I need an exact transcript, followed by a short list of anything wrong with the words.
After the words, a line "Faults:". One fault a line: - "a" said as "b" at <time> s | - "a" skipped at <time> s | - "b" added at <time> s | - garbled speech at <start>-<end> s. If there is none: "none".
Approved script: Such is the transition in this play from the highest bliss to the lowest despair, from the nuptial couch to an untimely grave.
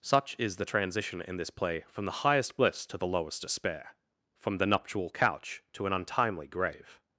Such is the transition in this play from the highest bliss to the lowest despair, from the nuptial couch to an untimely grave.
Faults:
none